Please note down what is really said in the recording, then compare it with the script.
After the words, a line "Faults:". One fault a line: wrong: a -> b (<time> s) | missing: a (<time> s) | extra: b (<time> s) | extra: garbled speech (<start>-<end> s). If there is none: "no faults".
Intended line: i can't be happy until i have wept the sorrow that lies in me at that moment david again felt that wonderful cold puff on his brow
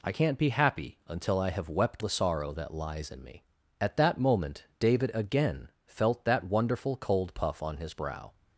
i can't be happy until i have wept the sorrow that lies in me at that moment david again felt that wonderful cold puff on his brow
Faults:
no faults